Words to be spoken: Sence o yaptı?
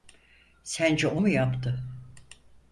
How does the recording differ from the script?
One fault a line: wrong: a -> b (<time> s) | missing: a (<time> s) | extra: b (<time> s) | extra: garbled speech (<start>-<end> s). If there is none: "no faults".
extra: mu (1.2 s)